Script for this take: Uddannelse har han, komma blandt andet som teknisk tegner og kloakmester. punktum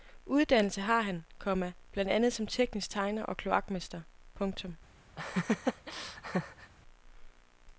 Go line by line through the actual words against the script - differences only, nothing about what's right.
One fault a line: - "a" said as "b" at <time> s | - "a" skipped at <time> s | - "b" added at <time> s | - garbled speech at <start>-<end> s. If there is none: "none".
none